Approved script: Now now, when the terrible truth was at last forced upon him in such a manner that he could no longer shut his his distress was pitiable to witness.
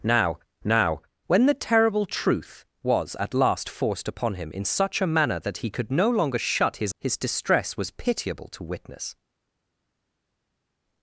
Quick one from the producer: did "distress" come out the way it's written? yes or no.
yes